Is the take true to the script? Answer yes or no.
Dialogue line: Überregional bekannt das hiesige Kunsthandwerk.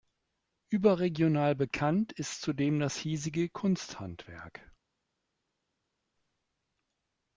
no